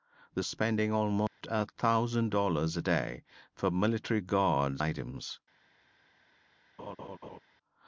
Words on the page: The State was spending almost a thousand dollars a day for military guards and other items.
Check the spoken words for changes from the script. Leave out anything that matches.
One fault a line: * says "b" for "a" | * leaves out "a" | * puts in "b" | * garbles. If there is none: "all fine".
* leaves out "State was"
* leaves out "and other"